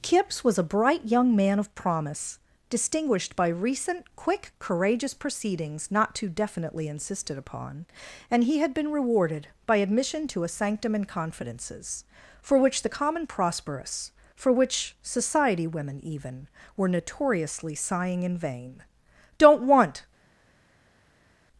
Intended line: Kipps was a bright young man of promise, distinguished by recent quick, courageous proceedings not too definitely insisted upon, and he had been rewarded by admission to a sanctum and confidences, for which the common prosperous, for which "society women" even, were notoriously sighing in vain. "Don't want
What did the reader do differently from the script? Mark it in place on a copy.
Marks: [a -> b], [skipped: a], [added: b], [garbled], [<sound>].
Kipps was a bright young man of promise, distinguished by recent quick, courageous proceedings not too definitely insisted upon, and he had been rewarded by admission to a sanctum and confidences, for which the common prosperous, for which "society women" even, were notoriously sighing in vain. "Don't want